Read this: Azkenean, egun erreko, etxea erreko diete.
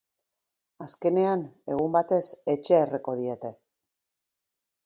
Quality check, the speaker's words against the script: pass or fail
fail